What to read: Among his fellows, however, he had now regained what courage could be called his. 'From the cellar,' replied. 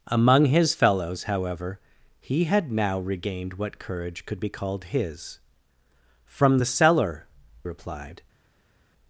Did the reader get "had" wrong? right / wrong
right